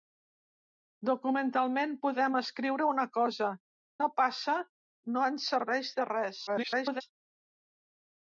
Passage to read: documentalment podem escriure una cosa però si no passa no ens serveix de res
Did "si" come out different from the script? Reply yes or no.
yes